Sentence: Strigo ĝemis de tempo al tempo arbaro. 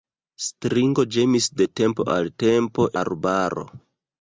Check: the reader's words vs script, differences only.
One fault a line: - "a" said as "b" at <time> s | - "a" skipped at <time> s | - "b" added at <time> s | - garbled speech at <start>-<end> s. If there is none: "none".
none